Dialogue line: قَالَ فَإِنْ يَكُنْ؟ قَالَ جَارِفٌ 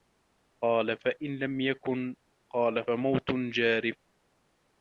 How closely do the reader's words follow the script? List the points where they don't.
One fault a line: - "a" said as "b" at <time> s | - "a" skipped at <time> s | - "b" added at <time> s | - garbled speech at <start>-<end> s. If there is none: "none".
- "لَمْ" added at 1.4 s
- "فَمَوْتٌ" added at 2.8 s